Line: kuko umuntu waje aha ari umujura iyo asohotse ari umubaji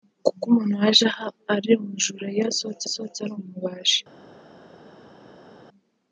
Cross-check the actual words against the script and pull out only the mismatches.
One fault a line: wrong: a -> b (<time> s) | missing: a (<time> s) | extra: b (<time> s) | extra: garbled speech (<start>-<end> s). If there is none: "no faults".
extra: asohotse (2.9 s)